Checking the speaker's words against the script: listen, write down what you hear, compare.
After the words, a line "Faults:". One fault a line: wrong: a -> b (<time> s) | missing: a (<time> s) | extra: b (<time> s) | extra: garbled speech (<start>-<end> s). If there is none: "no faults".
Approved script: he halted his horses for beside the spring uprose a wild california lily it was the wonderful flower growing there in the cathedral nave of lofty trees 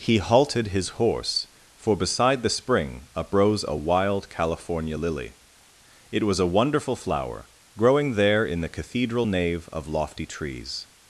he halted his horse for beside the spring uprose a wild california lily it was a wonderful flower growing there in the cathedral nave of lofty trees
Faults:
wrong: horses -> horse (1.0 s)
wrong: the -> a (6.4 s)